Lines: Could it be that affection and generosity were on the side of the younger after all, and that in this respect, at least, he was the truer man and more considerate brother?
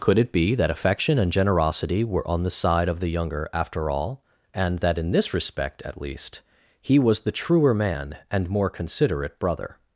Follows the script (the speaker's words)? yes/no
yes